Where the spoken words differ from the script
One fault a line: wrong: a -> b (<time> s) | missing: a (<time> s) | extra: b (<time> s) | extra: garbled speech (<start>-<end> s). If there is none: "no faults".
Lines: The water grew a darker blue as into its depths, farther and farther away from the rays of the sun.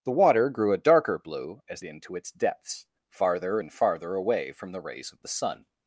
no faults